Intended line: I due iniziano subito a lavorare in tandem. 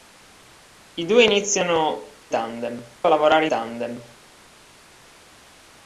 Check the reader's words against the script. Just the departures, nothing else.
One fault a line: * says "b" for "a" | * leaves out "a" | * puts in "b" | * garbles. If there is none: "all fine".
* says "tandem" for "subito"
* leaves out "in"